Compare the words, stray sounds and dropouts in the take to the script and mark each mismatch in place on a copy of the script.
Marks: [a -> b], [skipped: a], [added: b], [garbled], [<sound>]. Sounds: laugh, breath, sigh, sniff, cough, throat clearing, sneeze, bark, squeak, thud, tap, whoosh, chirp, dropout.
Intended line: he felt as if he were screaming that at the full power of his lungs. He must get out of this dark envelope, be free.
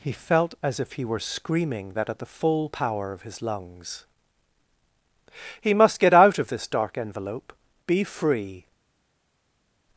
he felt as if he were screaming that at the full power of his lungs. He must get out of this dark envelope, be free.